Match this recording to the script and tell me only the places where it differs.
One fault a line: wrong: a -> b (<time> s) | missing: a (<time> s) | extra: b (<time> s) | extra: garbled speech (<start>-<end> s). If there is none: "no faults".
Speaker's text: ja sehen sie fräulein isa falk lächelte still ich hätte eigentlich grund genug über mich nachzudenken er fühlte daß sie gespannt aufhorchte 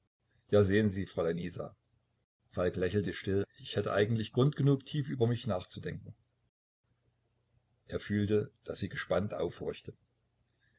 extra: tief (4.9 s)